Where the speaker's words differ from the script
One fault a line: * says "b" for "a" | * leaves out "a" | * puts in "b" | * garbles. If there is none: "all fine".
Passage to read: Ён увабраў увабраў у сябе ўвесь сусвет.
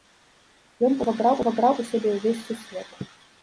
all fine